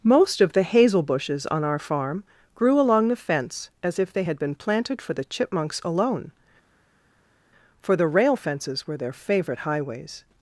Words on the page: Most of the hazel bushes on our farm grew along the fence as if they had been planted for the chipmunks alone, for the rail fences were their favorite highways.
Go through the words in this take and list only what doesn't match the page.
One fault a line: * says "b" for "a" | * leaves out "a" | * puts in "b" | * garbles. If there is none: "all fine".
all fine